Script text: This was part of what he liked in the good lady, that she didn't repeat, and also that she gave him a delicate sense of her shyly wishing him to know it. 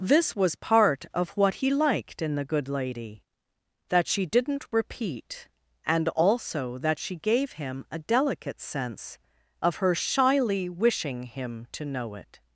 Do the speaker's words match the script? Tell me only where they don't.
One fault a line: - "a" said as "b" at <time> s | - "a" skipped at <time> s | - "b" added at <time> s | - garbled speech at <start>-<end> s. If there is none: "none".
none